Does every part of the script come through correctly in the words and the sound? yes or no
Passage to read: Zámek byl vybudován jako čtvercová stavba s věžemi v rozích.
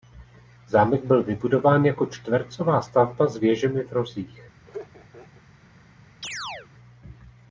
no